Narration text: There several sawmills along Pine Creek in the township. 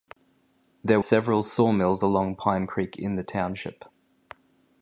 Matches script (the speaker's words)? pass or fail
pass